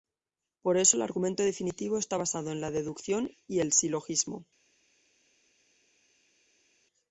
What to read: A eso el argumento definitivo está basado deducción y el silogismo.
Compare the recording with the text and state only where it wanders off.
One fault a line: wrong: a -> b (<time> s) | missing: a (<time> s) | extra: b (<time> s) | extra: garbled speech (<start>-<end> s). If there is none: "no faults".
wrong: A -> Por (0.6 s)
extra: en la (2.5 s)